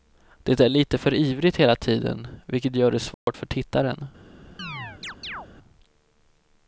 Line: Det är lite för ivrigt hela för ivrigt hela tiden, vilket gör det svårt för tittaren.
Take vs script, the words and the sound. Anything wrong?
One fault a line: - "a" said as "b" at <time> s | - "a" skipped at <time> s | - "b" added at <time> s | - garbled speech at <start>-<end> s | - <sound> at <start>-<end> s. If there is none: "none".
- "för ivrigt hela" skipped at 1.8 s
- dropout at 3.1-3.3 s
- chirp at 4.6-5.5 s